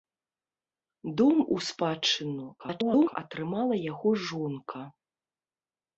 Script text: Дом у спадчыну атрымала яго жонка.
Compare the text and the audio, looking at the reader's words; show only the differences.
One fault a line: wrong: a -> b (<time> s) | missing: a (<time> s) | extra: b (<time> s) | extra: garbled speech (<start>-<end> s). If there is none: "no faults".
extra: garbled speech (2.6-3.2 s)